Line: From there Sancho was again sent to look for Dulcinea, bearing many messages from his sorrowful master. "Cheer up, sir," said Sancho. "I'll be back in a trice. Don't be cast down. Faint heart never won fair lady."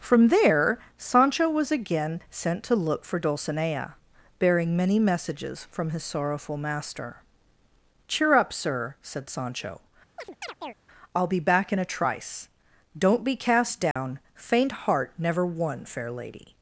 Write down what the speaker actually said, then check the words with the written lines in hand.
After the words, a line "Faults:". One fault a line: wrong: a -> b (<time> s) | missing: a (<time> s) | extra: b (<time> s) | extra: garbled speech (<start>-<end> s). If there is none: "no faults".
From there Sancho was again sent to look for Dulcinea, bearing many messages from his sorrowful master. "Cheer up, sir," said Sancho. "I'll be back in a trice. Don't be cast down. Faint heart never won fair lady."
Faults:
no faults